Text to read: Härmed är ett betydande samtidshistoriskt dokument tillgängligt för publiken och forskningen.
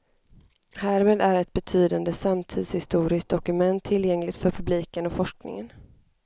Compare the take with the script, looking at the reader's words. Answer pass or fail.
pass